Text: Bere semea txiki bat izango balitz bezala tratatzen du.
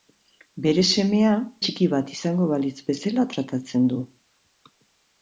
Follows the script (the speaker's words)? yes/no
yes